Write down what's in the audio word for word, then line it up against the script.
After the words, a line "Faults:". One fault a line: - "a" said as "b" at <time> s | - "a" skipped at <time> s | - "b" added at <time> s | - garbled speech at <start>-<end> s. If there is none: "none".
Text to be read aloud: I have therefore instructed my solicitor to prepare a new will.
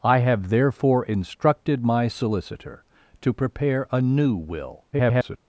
I have therefore instructed my solicitor to prepare a new will. [garbled]
Faults:
- garbled speech at 4.9-5.4 s